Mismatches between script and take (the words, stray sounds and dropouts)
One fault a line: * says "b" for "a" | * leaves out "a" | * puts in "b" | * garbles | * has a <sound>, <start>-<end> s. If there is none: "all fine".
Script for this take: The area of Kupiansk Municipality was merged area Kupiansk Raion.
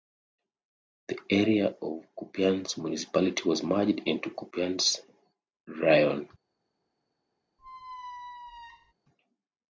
* says "into" for "area"
* has a squeak, 7.6-8.9 s